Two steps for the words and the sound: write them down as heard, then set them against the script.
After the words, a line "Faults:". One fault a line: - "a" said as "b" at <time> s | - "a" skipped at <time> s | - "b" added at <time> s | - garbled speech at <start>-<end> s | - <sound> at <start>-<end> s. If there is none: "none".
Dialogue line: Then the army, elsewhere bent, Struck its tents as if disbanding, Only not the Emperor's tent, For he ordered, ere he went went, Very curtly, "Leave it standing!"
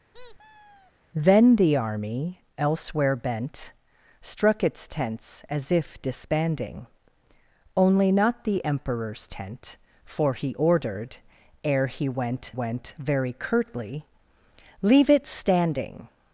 Then the army, elsewhere bent, Struck its tents as if disbanding, Only not the Emperor's tent, For he ordered, ere he went went, Very curtly, "Leave it standing!"
Faults:
- squeak at 0.1-0.9 s